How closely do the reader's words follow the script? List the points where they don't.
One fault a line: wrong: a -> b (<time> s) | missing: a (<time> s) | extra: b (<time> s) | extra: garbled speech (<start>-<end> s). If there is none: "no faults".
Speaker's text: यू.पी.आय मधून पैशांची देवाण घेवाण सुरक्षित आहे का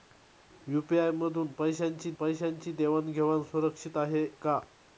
extra: पैशांची (2.1 s)